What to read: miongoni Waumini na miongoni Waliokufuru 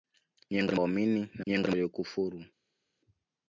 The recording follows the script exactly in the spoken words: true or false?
true